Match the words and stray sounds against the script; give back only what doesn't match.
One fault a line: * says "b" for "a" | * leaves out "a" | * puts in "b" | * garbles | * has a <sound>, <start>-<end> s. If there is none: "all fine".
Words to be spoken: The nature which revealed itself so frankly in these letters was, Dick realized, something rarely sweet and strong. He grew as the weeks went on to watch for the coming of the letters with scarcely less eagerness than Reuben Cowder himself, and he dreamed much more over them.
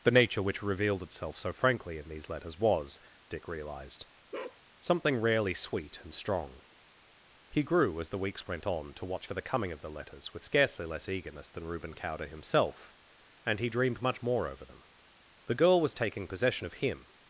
* has a bark, 4.3-4.6 s
* puts in "The girl was taking possession of him"